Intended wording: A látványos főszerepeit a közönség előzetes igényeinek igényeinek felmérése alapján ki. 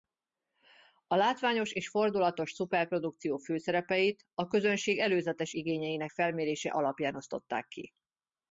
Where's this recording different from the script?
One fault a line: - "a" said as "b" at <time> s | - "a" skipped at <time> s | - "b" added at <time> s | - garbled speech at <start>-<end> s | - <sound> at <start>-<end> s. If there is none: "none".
- "és fordulatos szuperprodukció" added at 1.7 s
- "igényeinek" skipped at 6.1 s
- "osztották" added at 7.1 s